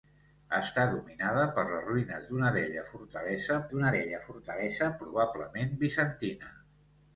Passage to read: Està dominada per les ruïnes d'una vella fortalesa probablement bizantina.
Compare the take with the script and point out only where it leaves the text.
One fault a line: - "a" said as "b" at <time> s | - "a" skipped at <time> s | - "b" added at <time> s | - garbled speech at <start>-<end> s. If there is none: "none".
- "d'una vella fortalesa" added at 3.7 s